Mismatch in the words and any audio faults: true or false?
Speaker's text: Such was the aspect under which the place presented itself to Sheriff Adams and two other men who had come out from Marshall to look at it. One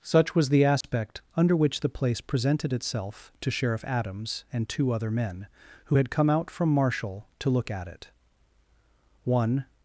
true